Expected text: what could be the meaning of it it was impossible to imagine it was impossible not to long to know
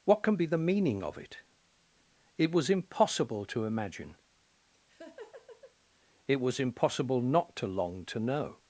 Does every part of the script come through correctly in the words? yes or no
no